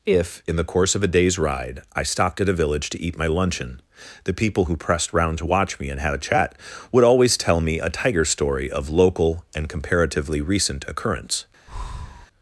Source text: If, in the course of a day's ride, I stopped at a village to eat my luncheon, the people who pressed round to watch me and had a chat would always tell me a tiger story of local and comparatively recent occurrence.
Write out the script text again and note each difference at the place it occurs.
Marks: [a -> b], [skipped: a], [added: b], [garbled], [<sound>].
If, in the course of a day's ride, I stopped at a village to eat my luncheon, the people who pressed round to watch me and had a chat would always tell me a tiger story of local and comparatively recent occurrence. [breath]